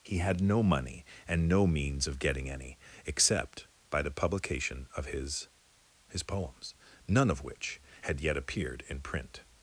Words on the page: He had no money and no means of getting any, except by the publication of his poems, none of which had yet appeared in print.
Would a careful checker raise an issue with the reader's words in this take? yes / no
yes